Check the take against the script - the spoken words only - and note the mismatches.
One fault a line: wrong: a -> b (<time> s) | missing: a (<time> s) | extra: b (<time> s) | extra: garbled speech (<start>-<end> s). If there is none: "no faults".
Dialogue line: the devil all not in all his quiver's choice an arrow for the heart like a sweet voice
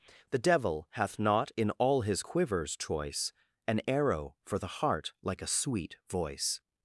wrong: all -> hath (0.9 s)